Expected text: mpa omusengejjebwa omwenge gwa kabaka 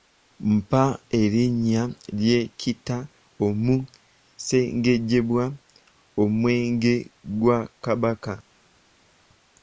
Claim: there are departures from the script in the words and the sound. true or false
true